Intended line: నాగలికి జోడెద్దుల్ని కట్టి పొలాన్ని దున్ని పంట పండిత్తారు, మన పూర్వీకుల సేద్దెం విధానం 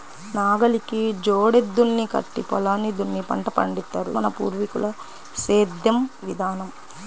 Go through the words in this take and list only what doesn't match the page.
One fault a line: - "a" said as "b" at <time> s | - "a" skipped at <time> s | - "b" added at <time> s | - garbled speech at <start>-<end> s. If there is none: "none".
none